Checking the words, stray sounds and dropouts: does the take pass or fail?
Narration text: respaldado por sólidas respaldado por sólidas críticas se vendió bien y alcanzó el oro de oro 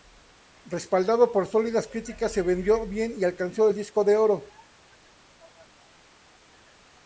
fail